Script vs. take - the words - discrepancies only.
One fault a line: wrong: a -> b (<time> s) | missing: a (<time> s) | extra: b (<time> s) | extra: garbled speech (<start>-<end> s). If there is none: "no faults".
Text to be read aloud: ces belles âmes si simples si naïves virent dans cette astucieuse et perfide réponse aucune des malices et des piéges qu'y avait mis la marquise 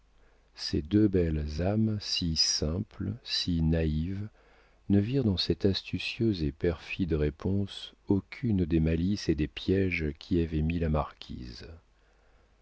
extra: deux (0.8 s)
extra: ne (4.9 s)